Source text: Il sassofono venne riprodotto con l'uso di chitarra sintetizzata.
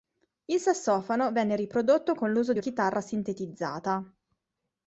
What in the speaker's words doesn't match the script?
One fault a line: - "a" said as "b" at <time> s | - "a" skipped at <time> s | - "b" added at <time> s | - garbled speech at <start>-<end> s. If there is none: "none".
none